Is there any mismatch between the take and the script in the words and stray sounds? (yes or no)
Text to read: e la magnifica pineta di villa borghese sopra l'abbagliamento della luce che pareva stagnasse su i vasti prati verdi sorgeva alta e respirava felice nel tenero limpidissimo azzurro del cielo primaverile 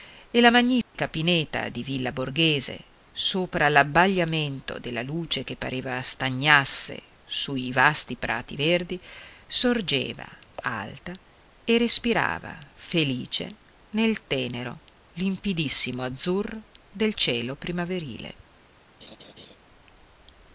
yes